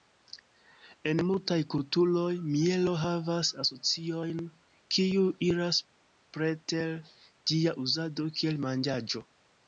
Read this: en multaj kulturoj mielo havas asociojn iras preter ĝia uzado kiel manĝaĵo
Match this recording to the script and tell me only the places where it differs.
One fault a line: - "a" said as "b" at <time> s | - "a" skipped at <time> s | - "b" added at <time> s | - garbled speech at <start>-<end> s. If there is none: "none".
- "kiuj" added at 5.0 s